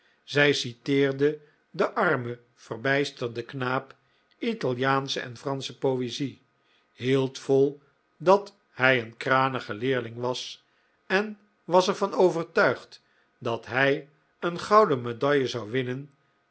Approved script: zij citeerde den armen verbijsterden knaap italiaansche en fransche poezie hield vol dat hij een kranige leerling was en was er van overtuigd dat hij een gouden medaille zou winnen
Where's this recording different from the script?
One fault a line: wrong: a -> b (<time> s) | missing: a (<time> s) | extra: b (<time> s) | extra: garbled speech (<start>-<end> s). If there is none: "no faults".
no faults